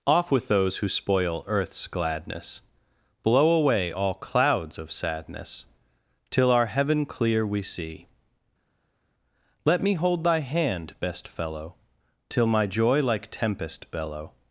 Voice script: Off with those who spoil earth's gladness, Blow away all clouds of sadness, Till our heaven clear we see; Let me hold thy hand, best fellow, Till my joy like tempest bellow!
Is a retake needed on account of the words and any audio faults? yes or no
no